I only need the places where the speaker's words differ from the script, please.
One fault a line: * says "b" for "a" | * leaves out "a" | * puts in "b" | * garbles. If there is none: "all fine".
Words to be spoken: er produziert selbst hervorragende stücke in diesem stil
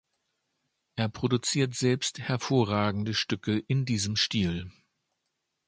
all fine